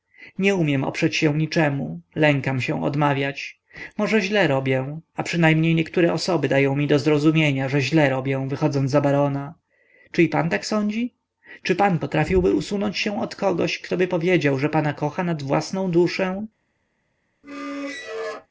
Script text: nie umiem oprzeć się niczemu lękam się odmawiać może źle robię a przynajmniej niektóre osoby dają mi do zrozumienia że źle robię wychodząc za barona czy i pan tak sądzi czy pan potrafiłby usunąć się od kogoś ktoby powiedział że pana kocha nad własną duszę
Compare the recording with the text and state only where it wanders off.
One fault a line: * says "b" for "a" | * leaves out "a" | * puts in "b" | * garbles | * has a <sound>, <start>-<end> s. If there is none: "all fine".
* has a squeak, 17.4-18.5 s